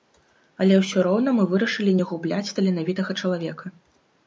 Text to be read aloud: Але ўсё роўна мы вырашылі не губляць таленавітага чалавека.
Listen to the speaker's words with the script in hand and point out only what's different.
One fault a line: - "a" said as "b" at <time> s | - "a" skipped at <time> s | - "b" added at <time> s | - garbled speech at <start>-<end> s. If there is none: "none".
none